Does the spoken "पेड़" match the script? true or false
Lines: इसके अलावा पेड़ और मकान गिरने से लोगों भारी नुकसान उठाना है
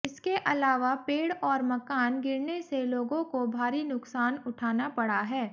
true